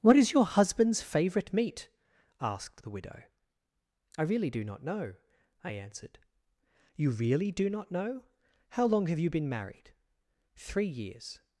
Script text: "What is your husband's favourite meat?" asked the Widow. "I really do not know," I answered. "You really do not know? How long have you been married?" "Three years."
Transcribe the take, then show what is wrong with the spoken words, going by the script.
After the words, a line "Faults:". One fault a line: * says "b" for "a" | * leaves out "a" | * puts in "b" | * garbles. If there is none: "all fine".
"What is your husband's favourite meat?" asked the Widow. "I really do not know," I answered. "You really do not know? How long have you been married?" "Three years."
Faults:
all fine